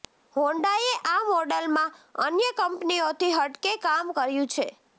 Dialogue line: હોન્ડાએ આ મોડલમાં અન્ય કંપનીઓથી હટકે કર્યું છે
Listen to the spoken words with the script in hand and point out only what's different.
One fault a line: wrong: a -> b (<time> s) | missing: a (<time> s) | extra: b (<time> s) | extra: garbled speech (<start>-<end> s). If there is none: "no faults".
extra: કામ (3.8 s)